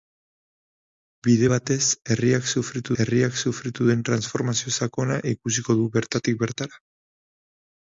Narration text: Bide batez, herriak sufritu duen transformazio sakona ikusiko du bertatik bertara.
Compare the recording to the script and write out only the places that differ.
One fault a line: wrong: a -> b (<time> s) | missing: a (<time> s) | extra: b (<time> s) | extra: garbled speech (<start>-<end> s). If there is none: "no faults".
extra: herriak sufritu (3.0 s)